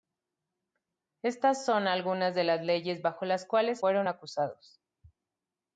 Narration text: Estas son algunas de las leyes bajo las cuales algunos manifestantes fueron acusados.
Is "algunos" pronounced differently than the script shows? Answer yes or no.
yes